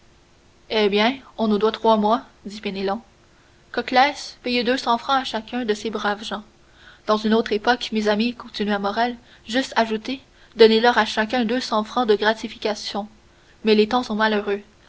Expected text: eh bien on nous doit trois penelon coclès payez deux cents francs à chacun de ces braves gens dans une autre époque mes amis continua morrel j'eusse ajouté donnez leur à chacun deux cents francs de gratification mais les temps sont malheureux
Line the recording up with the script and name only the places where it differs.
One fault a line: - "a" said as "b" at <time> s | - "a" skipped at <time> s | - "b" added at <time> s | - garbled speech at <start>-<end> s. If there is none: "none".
- "mois dit" added at 1.9 s